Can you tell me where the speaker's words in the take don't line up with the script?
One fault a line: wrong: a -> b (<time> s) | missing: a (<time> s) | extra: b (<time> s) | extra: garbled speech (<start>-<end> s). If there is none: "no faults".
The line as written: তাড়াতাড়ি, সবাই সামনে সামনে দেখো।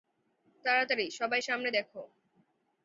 missing: সামনে (1.7 s)